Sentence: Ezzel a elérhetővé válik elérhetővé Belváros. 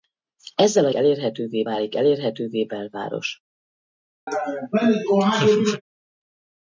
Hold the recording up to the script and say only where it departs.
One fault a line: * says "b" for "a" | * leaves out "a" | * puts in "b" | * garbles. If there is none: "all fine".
all fine